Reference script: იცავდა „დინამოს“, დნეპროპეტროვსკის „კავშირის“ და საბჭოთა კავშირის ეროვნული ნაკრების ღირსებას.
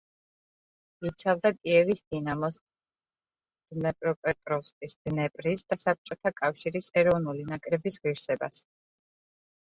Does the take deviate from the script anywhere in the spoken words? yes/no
yes